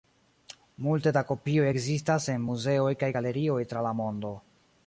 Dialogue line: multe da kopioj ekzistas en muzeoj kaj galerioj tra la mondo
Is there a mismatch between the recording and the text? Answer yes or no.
no